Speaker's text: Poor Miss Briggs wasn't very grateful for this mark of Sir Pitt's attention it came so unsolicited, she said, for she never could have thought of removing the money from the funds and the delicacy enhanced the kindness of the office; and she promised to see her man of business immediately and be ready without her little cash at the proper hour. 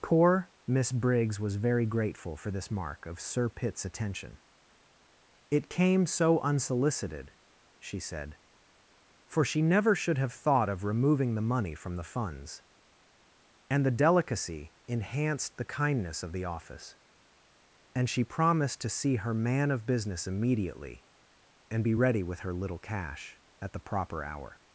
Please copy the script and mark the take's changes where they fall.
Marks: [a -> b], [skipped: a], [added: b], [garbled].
Poor Miss Briggs [wasn't -> was] very grateful for this mark of Sir Pitt's attention it came so unsolicited, she said, for she never [could -> should] have thought of removing the money from the funds and the delicacy enhanced the kindness of the office; and she promised to see her man of business immediately and be ready [without -> with] her little cash at the proper hour.